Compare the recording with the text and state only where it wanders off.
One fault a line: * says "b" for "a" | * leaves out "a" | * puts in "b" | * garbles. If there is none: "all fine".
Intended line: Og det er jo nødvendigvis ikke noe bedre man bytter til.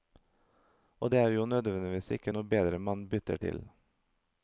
all fine